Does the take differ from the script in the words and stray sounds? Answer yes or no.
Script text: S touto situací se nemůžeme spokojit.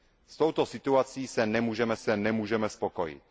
yes